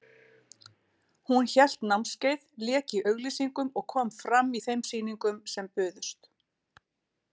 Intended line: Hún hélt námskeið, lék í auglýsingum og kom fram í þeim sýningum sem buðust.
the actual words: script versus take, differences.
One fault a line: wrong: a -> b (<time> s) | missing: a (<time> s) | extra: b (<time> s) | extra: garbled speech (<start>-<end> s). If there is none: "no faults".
no faults